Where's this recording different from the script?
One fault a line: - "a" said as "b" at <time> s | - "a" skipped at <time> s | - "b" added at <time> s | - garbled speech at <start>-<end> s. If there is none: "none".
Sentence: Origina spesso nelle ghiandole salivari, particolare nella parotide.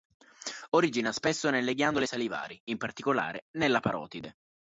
- "in" added at 2.7 s